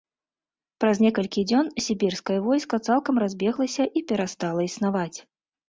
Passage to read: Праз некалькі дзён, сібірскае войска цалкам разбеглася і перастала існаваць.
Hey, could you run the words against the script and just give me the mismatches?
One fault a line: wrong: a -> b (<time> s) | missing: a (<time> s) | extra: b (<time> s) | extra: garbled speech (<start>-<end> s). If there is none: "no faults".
no faults